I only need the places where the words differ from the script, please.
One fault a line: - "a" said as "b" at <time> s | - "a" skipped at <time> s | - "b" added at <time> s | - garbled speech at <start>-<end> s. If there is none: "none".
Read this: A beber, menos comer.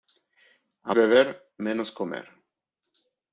none